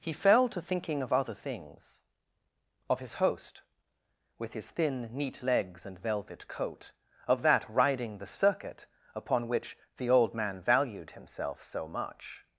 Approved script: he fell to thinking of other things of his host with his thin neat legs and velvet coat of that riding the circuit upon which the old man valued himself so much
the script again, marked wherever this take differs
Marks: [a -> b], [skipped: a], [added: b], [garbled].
he fell to thinking of other things of his host with his thin neat legs and velvet coat of that riding the circuit upon which the old man valued himself so much